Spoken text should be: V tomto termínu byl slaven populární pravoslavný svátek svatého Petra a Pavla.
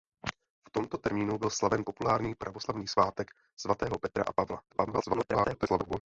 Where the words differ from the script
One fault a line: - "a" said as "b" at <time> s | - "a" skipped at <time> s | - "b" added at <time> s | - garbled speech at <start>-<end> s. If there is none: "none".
- garbled speech at 4.7-6.0 s